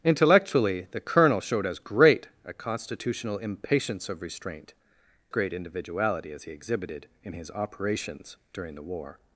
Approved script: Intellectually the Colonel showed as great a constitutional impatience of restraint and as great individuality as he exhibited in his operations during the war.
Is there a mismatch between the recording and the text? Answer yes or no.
yes